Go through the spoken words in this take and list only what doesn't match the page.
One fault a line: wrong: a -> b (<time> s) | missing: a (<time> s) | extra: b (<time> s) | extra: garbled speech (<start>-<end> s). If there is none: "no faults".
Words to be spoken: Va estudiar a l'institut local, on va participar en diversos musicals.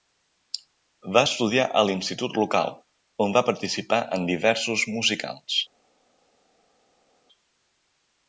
no faults